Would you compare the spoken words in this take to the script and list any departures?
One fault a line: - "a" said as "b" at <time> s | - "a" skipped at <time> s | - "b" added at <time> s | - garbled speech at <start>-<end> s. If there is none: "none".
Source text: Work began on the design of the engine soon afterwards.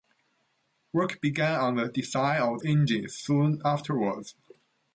- "the" skipped at 2.6 s